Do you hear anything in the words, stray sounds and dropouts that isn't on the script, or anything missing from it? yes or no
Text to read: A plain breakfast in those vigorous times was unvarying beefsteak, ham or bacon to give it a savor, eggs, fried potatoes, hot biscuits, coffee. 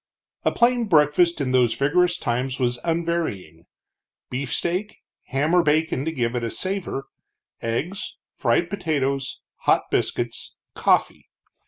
no